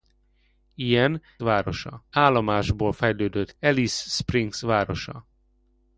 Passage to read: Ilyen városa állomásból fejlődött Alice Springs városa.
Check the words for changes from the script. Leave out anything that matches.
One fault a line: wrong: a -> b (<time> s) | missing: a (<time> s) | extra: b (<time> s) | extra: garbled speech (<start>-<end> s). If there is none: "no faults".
no faults